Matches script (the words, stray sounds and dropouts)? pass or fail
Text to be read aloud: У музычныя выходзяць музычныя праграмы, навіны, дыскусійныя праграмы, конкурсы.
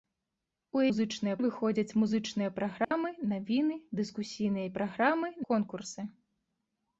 fail